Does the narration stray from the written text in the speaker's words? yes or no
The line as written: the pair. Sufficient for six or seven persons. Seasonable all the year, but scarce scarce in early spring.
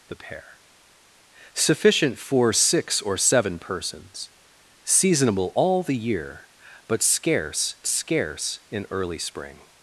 no